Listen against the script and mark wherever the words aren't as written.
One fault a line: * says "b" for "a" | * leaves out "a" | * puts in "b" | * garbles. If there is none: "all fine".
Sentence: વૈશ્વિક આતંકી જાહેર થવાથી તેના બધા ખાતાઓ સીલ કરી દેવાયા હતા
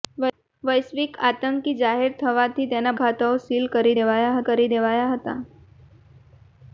* leaves out "બધા"
* puts in "કરી દેવાયા"